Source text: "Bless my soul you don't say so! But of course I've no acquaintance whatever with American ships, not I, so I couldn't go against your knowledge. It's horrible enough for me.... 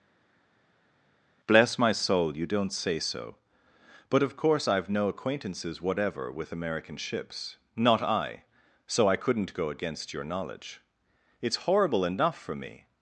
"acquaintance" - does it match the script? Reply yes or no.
no